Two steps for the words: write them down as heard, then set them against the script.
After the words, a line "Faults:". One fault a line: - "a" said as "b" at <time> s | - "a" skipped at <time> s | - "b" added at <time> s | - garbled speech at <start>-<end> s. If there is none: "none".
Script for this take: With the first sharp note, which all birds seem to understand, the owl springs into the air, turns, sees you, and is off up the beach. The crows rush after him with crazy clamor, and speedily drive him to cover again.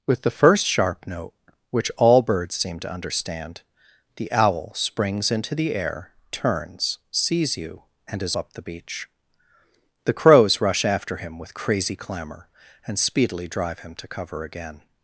With the first sharp note, which all birds seem to understand, the owl springs into the air, turns, sees you, and is up the beach. The crows rush after him with crazy clamor, and speedily drive him to cover again.
Faults:
- "off" skipped at 8.3 s